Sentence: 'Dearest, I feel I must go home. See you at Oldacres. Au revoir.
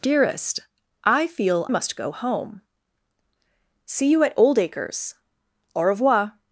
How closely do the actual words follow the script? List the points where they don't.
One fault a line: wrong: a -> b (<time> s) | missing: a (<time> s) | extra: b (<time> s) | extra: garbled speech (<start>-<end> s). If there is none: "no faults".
missing: I (1.7 s)